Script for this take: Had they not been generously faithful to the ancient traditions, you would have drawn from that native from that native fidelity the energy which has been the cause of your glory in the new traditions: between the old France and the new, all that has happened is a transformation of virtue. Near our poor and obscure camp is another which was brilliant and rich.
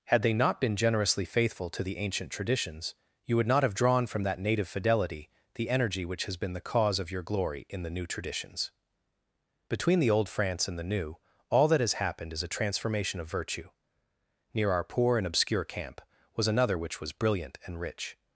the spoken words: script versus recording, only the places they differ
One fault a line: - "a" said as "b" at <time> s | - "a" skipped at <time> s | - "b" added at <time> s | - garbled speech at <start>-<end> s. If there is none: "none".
- "not" added at 3.5 s
- "from that native" skipped at 4.7 s
- "is" said as "was" at 16.4 s